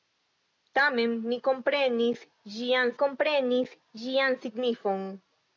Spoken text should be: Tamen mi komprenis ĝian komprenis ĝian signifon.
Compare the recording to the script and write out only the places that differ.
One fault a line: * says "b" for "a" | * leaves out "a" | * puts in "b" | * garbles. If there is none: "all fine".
all fine